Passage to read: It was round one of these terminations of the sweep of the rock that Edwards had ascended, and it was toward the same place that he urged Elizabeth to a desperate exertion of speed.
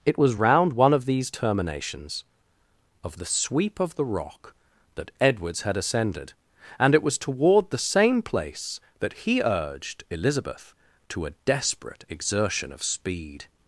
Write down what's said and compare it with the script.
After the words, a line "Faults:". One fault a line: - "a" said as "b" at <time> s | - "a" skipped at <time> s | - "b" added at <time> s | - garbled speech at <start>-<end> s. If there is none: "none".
It was round one of these terminations of the sweep of the rock that Edwards had ascended, and it was toward the same place that he urged Elizabeth to a desperate exertion of speed.
Faults:
none